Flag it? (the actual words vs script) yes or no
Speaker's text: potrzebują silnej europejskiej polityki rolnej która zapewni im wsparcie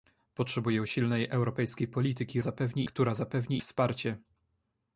yes